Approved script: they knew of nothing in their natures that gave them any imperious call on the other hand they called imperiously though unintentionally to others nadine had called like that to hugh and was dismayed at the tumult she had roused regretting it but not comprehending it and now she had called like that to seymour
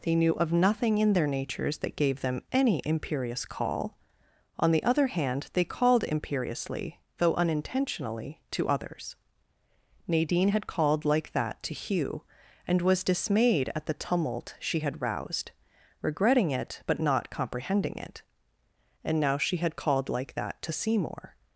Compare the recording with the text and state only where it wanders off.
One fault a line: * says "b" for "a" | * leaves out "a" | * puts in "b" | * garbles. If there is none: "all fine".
all fine